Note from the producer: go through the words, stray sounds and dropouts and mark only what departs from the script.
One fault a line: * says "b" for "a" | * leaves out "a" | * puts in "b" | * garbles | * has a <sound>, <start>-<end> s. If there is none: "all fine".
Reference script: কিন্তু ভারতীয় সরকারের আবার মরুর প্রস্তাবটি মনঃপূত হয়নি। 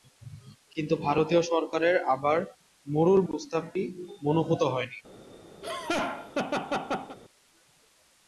* has a laugh, 5.6-7.2 s